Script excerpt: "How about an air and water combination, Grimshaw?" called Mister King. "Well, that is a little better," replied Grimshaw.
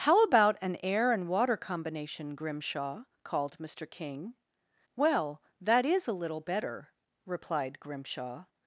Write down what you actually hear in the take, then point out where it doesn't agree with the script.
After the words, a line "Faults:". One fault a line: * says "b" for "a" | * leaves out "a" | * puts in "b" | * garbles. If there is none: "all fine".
"How about an air and water combination, Grimshaw?" called Mister King. "Well, that is a little better," replied Grimshaw.
Faults:
all fine